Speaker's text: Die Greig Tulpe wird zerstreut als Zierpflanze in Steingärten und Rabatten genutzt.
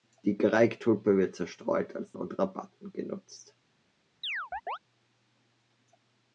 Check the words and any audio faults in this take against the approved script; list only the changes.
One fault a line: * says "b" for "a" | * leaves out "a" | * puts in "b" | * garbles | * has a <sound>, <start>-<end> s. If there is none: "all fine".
* leaves out "Zierpflanze in Steingärten"
* has a chirp, 4.2-4.8 s